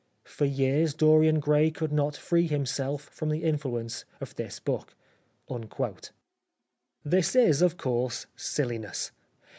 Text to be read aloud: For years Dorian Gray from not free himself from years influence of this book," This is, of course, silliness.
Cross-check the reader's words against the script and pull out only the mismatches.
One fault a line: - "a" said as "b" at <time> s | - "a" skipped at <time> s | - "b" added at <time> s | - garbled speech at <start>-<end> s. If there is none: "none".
- "from" said as "could" at 1.7 s
- "years" said as "the" at 3.3 s